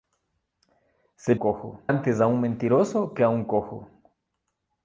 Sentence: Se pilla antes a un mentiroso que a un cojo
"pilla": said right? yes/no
no